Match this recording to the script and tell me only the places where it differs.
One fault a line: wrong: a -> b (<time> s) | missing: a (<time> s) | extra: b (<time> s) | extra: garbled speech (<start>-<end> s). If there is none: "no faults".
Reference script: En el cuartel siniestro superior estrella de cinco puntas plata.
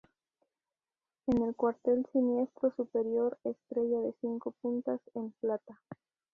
extra: en (5.1 s)